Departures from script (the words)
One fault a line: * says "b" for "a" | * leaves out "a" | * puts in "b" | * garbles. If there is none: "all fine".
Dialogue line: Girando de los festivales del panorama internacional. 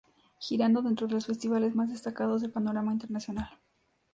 * puts in "dentro"
* puts in "más destacados"